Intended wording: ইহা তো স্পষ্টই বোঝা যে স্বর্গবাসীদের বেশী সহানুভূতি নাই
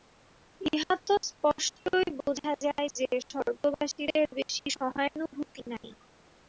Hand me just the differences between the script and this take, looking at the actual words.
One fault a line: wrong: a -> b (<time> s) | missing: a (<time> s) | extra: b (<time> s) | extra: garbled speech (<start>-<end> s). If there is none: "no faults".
extra: যায় (2.6 s)